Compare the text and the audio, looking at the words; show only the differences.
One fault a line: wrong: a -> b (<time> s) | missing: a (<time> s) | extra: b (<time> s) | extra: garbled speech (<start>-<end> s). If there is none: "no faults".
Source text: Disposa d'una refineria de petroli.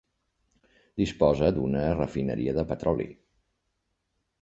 no faults